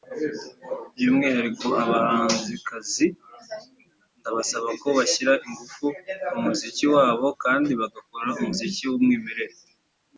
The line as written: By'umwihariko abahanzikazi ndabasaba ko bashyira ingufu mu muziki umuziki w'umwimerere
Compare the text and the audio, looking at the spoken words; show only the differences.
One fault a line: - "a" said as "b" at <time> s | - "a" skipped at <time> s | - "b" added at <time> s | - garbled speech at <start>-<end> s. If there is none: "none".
- "wabo kandi bagakora" added at 6.9 s